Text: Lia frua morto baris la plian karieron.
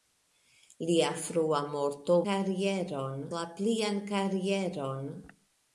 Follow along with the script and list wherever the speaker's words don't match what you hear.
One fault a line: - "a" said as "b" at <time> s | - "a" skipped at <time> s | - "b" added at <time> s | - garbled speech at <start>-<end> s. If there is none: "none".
- "baris" said as "karieron" at 2.3 s